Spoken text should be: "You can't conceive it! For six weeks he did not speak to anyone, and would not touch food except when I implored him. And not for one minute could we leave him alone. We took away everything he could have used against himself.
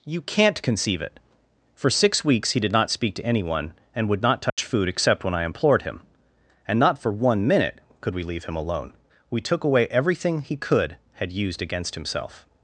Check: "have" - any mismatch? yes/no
yes